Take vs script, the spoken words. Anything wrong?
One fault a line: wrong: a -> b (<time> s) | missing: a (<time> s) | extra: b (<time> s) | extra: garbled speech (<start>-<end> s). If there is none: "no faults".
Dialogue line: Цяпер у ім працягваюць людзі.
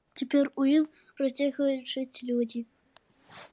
extra: жыць (2.0 s)